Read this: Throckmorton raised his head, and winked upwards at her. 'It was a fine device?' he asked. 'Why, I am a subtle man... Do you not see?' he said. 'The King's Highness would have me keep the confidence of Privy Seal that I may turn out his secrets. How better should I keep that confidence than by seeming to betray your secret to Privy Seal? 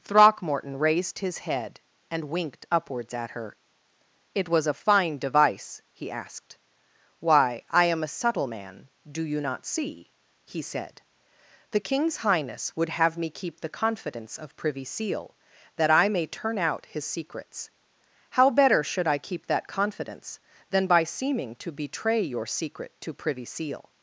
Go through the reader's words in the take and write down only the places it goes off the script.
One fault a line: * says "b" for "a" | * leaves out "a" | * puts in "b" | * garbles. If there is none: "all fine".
all fine